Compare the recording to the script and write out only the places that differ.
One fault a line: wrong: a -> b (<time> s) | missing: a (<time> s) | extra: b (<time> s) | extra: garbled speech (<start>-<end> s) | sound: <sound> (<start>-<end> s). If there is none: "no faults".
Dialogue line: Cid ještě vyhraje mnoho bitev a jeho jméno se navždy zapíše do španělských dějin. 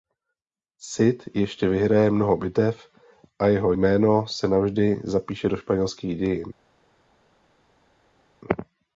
no faults